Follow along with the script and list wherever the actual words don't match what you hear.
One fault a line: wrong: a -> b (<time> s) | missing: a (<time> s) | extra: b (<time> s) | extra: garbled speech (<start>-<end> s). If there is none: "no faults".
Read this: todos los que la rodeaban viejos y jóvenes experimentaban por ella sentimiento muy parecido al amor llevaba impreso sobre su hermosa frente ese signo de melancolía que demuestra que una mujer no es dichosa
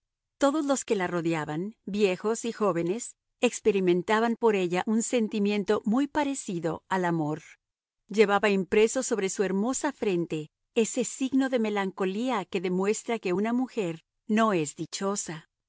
extra: un (4.8 s)